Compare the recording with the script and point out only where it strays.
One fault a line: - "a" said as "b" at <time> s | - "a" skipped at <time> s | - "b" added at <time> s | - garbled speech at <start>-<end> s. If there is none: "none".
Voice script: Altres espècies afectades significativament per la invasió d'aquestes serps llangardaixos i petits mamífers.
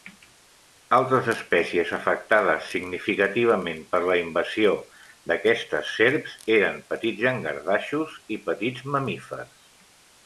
- "eren petits" added at 6.6 s